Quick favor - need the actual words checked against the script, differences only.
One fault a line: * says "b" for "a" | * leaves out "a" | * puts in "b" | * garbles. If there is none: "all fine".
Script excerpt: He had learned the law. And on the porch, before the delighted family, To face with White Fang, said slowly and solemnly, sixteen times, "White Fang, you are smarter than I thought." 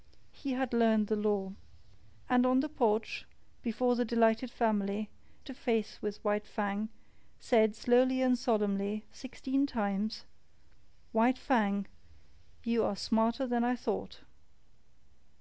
all fine